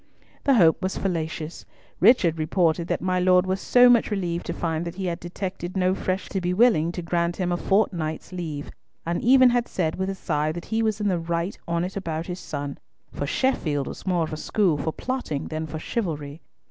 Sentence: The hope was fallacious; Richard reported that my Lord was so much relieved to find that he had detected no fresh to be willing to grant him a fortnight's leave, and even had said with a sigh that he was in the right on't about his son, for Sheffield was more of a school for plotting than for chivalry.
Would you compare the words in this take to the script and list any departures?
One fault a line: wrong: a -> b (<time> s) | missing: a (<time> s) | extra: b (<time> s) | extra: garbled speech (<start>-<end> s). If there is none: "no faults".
no faults